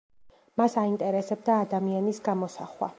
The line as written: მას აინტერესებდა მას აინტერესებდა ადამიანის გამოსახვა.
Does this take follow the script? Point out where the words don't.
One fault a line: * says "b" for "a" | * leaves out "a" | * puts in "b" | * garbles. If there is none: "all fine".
* leaves out "მას აინტერესებდა"